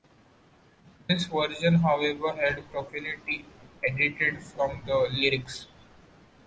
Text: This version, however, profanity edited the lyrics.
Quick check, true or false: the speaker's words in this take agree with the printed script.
false